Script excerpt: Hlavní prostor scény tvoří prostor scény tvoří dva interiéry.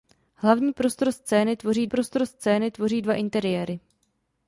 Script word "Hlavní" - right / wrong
right